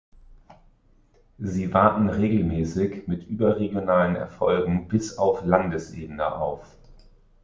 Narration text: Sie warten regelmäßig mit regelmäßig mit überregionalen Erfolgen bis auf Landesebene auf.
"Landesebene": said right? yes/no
yes